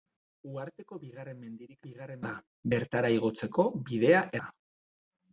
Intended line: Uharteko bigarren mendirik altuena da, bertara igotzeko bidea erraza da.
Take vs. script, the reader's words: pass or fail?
fail